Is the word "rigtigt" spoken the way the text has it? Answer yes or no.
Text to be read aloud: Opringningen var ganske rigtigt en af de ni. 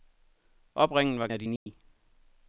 no